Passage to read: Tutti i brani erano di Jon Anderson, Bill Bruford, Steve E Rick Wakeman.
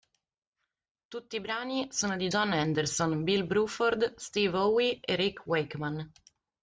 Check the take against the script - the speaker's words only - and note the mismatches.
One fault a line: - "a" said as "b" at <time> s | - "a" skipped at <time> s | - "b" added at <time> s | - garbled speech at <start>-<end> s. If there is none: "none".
- "erano" said as "sono" at 1.9 s
- "Howe" added at 4.6 s